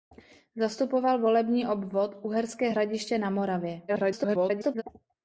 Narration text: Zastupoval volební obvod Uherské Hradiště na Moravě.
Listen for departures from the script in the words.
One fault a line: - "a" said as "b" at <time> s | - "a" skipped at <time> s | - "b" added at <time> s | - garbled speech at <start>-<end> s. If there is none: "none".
- garbled speech at 3.9-4.8 s